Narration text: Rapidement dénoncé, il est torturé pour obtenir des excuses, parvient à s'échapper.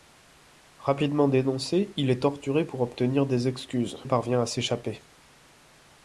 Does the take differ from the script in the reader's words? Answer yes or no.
no